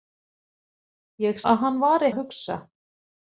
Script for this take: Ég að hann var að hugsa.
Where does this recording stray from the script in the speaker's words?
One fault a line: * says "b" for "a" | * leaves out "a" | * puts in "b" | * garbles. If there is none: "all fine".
all fine